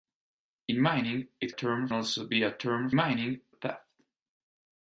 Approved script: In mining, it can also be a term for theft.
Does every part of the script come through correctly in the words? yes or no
no